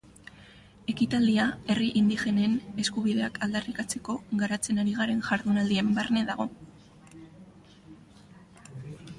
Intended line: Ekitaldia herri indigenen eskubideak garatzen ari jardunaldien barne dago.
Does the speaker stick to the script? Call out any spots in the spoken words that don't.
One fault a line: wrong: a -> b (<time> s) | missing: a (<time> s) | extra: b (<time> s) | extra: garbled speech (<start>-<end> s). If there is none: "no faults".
extra: aldarrikatzeko (3.5 s)
extra: garen (5.0 s)